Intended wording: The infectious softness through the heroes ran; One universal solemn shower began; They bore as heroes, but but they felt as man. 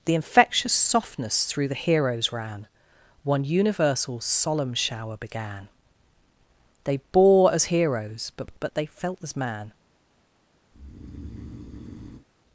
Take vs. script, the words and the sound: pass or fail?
fail